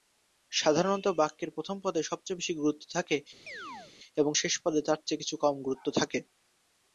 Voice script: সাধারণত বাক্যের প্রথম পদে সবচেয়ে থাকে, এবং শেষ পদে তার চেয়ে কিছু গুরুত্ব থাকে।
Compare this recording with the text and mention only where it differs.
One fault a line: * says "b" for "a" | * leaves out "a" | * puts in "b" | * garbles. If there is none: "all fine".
* puts in "বেশি গুরুত্ব"
* puts in "কম"